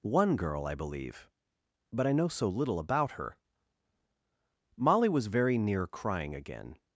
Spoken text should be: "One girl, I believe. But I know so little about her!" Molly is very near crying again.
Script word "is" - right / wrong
wrong